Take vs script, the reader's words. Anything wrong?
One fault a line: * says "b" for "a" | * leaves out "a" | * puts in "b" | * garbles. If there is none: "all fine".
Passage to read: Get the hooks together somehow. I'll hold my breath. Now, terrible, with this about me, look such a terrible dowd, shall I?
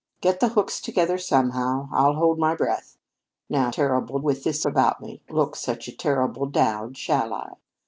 all fine